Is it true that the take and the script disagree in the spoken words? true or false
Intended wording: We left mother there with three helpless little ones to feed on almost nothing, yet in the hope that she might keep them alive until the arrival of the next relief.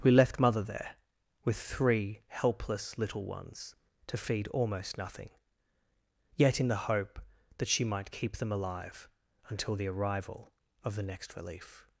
true